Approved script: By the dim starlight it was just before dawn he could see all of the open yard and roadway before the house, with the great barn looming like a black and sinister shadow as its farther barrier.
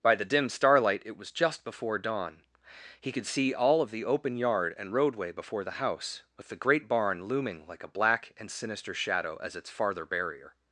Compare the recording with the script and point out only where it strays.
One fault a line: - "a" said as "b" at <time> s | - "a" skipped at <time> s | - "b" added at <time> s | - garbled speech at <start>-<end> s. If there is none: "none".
none